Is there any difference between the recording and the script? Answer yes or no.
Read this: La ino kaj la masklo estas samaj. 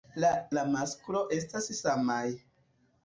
yes